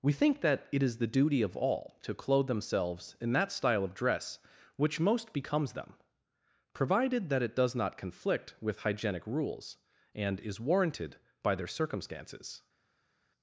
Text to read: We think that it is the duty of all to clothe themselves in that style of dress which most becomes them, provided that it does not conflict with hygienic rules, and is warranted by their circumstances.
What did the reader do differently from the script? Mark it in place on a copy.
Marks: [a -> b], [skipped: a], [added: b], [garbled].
We think that it is the duty of all to clothe themselves in that style of dress which most becomes them, provided that it does not conflict with hygienic rules, and is warranted by their circumstances.